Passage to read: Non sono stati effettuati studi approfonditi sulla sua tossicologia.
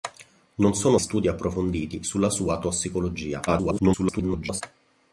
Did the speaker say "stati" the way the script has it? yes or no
no